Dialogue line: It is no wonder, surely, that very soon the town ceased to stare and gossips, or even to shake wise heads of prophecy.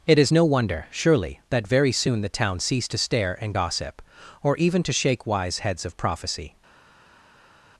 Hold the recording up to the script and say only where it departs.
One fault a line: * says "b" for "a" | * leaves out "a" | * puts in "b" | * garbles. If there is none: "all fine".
* says "gossip" for "gossips"